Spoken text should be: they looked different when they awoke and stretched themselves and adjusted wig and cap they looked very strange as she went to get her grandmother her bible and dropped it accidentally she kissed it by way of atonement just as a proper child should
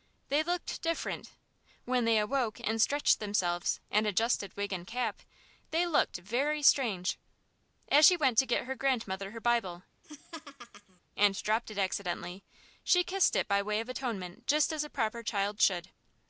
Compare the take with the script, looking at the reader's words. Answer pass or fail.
pass